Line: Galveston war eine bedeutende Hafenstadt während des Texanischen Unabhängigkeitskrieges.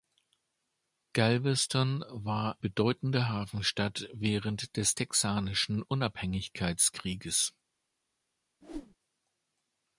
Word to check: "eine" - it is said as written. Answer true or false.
false